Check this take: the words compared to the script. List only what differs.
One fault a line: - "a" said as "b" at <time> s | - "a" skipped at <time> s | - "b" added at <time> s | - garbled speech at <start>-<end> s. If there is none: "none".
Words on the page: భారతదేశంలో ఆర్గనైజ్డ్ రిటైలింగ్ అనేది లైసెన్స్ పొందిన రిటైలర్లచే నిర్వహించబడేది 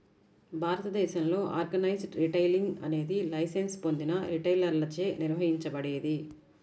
none